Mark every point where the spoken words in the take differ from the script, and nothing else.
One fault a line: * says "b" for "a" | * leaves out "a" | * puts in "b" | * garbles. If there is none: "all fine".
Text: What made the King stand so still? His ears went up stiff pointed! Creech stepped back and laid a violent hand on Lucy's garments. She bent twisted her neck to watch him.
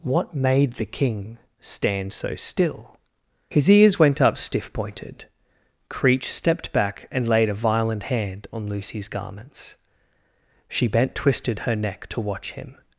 all fine